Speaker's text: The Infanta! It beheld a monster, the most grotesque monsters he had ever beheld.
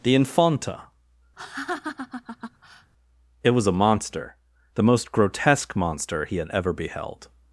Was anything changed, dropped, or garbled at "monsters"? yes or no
yes